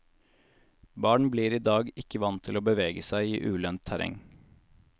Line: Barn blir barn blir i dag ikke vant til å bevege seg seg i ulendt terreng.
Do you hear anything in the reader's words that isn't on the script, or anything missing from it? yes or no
yes